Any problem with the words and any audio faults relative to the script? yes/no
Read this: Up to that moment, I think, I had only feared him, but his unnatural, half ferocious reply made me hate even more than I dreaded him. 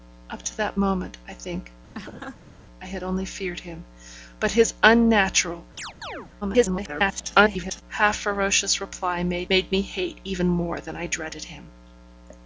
yes